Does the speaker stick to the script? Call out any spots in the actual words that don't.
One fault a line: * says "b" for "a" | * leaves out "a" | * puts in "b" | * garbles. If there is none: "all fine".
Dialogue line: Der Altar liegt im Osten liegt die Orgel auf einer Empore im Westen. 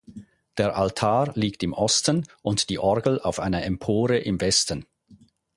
* says "und" for "liegt"